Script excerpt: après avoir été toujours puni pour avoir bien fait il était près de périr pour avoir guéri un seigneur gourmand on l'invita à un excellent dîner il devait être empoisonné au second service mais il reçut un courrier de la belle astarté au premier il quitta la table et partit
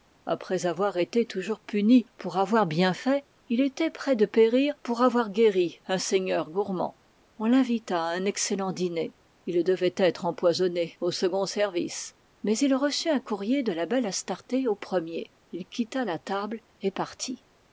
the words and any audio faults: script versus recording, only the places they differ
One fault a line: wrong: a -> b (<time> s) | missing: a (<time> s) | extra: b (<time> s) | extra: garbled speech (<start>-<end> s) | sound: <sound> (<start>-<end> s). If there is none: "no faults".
no faults